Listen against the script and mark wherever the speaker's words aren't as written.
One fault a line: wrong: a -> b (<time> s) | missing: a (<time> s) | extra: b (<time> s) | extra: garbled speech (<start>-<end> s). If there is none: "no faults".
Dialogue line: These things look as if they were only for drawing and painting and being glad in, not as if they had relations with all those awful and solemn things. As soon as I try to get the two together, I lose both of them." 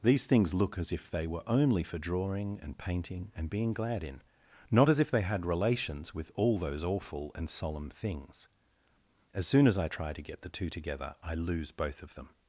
no faults